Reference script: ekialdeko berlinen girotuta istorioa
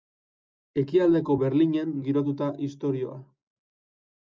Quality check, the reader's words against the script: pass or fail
pass